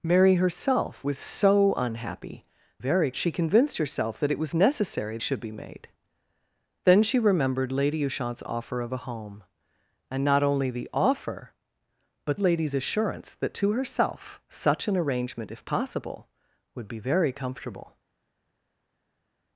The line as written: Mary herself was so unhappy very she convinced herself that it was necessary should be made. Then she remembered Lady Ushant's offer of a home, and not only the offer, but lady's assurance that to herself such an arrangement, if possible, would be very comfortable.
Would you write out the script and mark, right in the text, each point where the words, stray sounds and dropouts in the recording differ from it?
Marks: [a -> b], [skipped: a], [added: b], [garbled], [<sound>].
Mary herself was so unhappy very she convinced herself that it was necessary should be made. Then she remembered Lady Ushant's offer of a home, and not only the offer, but lady's assurance that to herself such an arrangement, if possible, would be very comfortable.